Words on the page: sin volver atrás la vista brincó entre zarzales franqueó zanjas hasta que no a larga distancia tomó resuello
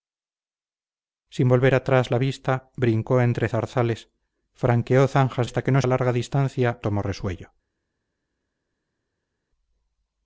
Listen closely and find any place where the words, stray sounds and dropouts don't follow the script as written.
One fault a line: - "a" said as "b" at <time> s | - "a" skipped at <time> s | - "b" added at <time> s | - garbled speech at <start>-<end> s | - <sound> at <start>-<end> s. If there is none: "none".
none